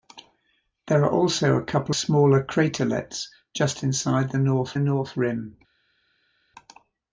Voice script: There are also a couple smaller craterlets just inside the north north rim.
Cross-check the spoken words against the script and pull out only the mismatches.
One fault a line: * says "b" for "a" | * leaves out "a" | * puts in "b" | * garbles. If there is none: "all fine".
all fine